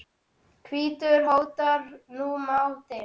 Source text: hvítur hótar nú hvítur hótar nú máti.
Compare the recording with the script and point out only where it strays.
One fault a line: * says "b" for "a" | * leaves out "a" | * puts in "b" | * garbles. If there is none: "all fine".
* leaves out "hvítur hótar nú"